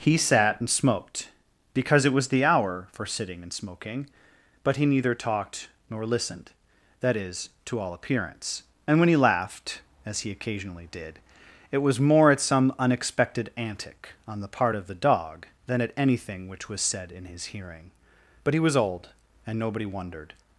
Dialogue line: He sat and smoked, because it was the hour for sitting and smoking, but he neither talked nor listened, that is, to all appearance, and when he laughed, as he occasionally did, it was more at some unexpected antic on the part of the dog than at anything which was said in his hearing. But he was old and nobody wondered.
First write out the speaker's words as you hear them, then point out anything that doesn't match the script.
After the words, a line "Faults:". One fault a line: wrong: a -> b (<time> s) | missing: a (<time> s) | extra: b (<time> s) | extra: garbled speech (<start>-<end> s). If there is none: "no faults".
He sat and smoked, because it was the hour for sitting and smoking, but he neither talked nor listened, that is, to all appearance, and when he laughed, as he occasionally did, it was more at some unexpected antic on the part of the dog than at anything which was said in his hearing. But he was old and nobody wondered.
Faults:
no faults